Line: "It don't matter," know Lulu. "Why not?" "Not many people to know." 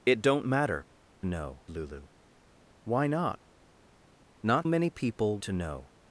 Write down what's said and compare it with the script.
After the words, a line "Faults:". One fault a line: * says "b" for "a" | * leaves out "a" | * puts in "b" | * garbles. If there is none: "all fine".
"It don't matter," know Lulu. "Why not?" "Not many people to know."
Faults:
all fine